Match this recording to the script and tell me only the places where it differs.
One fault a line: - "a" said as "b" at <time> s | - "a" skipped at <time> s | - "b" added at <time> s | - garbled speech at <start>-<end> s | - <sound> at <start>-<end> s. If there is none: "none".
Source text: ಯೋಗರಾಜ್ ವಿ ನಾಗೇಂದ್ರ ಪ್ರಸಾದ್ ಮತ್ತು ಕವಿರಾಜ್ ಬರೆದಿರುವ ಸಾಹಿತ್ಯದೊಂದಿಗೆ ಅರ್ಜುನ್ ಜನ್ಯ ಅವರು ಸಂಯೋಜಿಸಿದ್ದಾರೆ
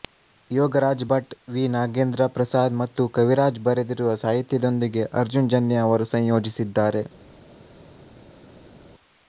- "ಭಟ್" added at 1.1 s